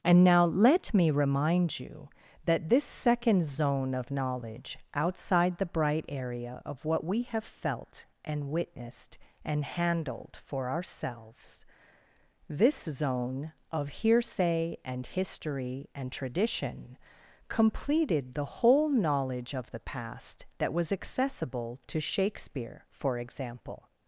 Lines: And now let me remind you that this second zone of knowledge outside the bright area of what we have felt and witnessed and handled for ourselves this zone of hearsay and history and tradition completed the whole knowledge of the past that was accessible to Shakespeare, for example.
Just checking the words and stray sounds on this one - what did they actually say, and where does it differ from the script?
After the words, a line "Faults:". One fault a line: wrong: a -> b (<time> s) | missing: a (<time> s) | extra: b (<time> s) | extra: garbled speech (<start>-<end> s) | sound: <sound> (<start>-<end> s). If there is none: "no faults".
And now let me remind you that this second zone of knowledge outside the bright area of what we have felt and witnessed and handled for ourselves this zone of hearsay and history and tradition completed the whole knowledge of the past that was accessible to Shakespeare, for example.
Faults:
no faults